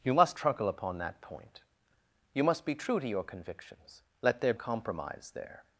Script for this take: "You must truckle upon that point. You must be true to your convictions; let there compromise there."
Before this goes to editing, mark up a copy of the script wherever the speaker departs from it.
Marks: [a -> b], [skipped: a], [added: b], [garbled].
"You must truckle upon that point. You must be true to your convictions; let there compromise there."